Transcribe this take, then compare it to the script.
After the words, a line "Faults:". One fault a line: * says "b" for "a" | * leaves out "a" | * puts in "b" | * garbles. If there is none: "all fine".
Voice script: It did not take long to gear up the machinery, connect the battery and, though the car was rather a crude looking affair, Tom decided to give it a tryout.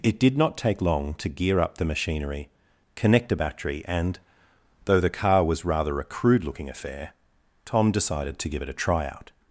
It did not take long to gear up the machinery, connect a battery and, though the car was rather a crude looking affair, Tom decided to give it a tryout.
Faults:
* says "a" for "the"